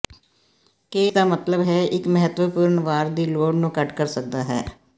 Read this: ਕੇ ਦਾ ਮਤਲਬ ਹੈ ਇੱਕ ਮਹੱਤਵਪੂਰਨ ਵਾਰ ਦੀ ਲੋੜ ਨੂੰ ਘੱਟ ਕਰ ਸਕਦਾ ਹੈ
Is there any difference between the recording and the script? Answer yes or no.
no